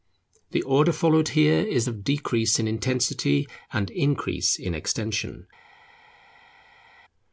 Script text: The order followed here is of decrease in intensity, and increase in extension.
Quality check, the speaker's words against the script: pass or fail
pass